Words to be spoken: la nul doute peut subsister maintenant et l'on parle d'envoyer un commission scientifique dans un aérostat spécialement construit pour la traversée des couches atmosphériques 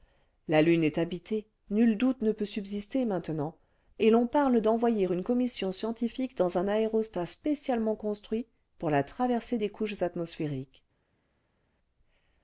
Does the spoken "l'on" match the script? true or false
true